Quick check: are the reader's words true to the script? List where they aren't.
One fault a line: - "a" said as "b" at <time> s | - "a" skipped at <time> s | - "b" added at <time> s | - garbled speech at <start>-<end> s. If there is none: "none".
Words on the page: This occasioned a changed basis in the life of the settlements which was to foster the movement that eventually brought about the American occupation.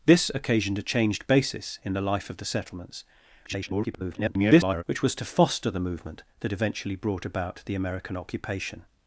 - garbled speech at 3.4-4.8 s